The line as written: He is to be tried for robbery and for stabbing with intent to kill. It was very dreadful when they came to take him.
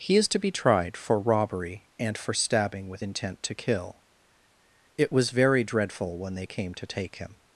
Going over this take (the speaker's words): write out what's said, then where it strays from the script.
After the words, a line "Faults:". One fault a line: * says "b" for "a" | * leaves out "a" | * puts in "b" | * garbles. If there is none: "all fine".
He is to be tried for robbery and for stabbing with intent to kill. It was very dreadful when they came to take him.
Faults:
all fine